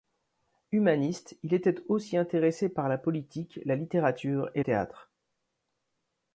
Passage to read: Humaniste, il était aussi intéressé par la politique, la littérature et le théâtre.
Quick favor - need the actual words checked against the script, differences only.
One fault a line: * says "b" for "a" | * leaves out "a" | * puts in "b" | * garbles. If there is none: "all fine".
* leaves out "le"